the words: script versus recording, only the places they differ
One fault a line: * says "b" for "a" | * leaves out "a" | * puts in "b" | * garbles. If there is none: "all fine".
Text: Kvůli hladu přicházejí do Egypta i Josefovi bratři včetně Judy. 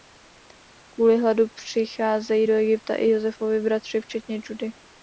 all fine